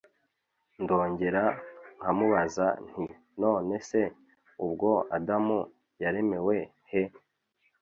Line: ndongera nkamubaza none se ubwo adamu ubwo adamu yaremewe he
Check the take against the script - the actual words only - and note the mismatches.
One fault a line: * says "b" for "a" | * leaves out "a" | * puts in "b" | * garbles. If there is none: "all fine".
* puts in "nti"
* leaves out "ubwo adamu"